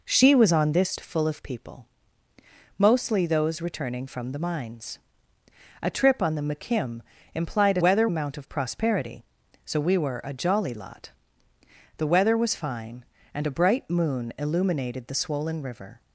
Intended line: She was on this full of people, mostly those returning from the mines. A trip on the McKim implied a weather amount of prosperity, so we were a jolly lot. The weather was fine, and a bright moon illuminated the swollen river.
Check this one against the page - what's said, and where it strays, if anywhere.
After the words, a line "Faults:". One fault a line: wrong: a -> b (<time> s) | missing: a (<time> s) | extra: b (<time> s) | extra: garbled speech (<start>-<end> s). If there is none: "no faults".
She was on this full of people, mostly those returning from the mines. A trip on the McKim implied a weather amount of prosperity, so we were a jolly lot. The weather was fine, and a bright moon illuminated the swollen river.
Faults:
no faults